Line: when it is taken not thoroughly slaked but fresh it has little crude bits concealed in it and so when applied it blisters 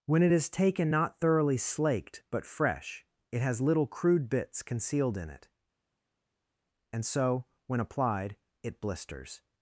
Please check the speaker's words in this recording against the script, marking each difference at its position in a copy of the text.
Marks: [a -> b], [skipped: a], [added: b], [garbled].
when it is taken not thoroughly slaked but fresh it has little crude bits concealed in it and so when applied it blisters